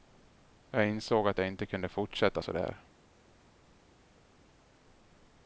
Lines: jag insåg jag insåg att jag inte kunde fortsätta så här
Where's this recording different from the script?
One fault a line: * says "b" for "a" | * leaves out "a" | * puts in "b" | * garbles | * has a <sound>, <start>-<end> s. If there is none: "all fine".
* leaves out "jag insåg"
* says "där" for "här"